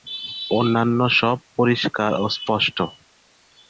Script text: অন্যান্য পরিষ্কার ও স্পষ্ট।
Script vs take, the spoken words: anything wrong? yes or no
yes